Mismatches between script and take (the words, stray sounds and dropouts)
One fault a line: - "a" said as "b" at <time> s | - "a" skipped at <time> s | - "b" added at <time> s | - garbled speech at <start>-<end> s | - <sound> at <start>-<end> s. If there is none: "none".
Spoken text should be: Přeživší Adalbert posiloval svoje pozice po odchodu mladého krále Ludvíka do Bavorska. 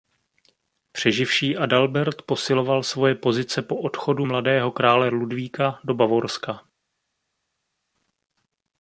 none